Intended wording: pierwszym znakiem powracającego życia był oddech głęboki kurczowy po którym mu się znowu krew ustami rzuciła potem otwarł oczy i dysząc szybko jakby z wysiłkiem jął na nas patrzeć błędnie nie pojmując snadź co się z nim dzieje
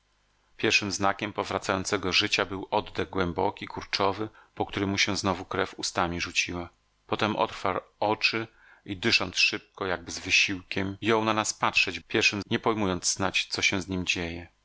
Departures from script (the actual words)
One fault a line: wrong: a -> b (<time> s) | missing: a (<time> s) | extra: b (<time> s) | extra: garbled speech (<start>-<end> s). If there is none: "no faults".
wrong: błędnie -> pierwszym (12.1 s)